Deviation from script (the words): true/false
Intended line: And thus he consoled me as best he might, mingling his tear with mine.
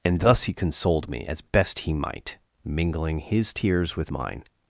true